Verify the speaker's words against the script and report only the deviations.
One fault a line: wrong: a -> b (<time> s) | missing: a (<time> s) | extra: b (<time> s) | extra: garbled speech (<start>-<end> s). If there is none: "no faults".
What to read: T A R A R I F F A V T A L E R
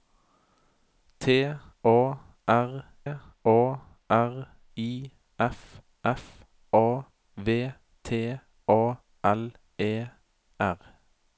no faults